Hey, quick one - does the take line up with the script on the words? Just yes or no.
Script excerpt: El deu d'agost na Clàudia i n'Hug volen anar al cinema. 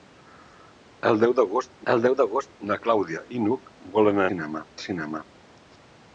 no